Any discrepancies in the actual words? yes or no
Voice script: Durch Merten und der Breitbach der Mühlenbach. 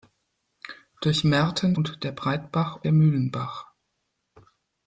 no